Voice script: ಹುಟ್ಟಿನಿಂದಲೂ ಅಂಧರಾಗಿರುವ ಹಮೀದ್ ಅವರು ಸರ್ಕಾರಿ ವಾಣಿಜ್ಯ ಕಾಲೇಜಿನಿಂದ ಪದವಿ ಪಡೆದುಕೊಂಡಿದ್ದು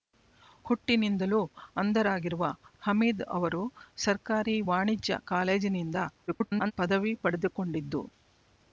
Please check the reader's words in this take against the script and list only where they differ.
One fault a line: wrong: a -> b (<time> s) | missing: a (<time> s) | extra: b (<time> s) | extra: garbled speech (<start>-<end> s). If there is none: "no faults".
extra: garbled speech (6.3-6.7 s)